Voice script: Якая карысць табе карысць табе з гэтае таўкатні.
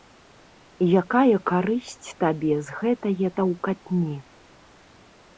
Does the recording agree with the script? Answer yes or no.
no